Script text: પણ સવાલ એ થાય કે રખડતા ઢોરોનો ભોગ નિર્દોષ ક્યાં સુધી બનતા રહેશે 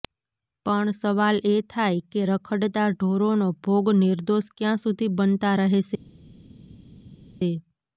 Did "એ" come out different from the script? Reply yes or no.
no